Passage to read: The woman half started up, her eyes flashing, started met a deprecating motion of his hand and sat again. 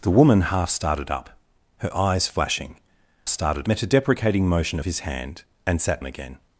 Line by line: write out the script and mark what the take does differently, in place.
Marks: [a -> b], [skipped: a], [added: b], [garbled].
The woman half started up, her eyes flashing, started met a deprecating motion of his hand and sat again.